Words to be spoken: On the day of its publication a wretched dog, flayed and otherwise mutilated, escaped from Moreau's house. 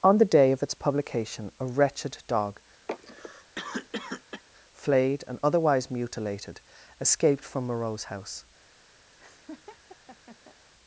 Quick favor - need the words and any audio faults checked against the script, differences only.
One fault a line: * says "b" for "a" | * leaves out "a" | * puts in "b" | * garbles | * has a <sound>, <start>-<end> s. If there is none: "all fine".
* has a cough, 2.9-4.4 s
* has a laugh, 9.2-10.6 s